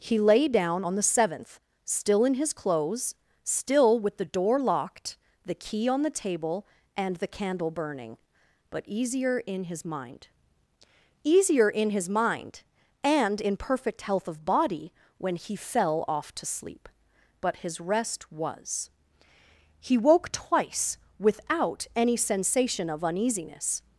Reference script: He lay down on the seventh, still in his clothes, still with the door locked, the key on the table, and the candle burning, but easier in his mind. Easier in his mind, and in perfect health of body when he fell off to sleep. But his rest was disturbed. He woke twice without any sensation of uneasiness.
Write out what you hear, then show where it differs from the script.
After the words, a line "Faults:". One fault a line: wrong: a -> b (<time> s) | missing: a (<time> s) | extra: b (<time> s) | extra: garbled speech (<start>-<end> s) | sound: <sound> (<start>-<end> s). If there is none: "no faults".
He lay down on the seventh, still in his clothes, still with the door locked, the key on the table, and the candle burning, but easier in his mind. Easier in his mind, and in perfect health of body when he fell off to sleep. But his rest was. He woke twice without any sensation of uneasiness.
Faults:
missing: disturbed (18.9 s)